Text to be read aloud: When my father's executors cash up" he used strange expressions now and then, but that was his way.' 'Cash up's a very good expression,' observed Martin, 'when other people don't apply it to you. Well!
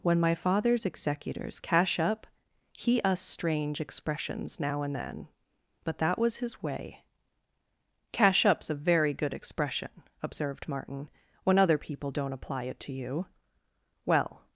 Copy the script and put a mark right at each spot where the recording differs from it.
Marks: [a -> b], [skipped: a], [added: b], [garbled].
When my father's executors cash up" he [used -> us] strange expressions now and then, but that was his way.' 'Cash up's a very good expression,' observed Martin, 'when other people don't apply it to you. Well!